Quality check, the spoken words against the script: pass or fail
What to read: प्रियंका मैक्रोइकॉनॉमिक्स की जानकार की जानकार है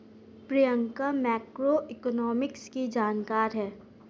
fail